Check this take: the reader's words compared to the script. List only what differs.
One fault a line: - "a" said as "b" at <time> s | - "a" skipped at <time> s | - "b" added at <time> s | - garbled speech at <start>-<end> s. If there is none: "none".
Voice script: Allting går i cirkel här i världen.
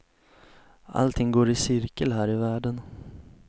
none